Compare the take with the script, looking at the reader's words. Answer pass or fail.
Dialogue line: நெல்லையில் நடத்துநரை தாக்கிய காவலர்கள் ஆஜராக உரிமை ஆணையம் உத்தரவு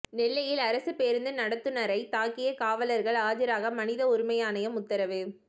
fail